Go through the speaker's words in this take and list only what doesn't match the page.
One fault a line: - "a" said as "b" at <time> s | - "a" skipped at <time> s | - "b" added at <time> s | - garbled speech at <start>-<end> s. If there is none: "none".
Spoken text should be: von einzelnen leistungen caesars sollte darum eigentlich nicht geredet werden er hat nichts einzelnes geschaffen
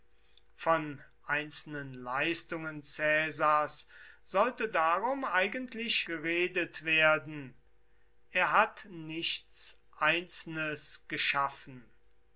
- "nicht" skipped at 6.1 s